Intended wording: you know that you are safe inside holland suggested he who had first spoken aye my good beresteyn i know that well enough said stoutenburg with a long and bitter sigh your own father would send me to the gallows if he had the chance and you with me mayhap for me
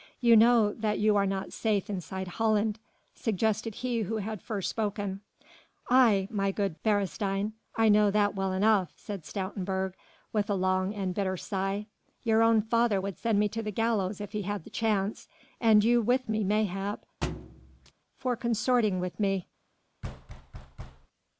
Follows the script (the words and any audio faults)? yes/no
no